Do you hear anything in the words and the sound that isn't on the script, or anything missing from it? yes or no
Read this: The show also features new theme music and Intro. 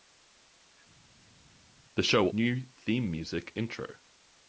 yes